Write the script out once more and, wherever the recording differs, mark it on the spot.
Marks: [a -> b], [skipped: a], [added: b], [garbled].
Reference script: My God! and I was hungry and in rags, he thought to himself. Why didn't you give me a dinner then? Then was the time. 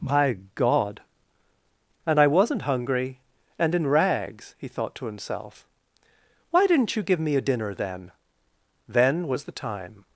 My God! and I [was -> wasn't] hungry and in rags, he thought to himself. Why didn't you give me a dinner then? Then was the time.